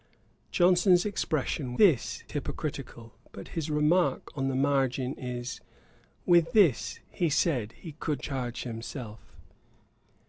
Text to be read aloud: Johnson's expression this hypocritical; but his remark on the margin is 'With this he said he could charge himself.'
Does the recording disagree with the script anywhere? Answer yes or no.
no